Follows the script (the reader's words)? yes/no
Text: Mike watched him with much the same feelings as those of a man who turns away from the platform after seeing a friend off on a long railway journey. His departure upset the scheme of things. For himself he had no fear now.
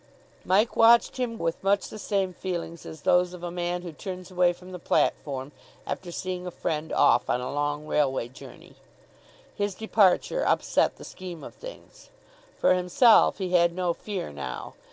yes